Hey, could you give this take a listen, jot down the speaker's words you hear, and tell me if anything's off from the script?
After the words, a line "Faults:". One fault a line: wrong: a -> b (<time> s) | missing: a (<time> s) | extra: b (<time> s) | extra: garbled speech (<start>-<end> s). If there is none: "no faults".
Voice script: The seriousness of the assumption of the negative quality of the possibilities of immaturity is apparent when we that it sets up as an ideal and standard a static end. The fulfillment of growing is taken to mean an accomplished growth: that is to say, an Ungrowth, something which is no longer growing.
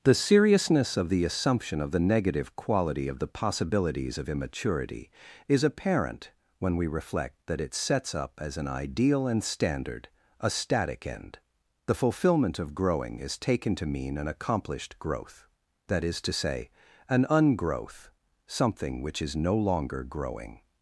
The seriousness of the assumption of the negative quality of the possibilities of immaturity is apparent when we reflect that it sets up as an ideal and standard a static end. The fulfillment of growing is taken to mean an accomplished growth: that is to say, an Ungrowth, something which is no longer growing.
Faults:
extra: reflect (6.9 s)